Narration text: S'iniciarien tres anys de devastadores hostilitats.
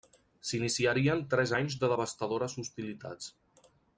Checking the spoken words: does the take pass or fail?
pass